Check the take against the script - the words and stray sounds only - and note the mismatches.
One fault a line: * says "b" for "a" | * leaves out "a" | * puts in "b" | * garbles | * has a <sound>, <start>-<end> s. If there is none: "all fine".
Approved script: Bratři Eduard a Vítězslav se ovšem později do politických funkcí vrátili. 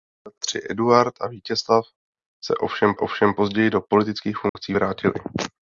* puts in "ovšem"
* has a dropout, 4.5-4.6 s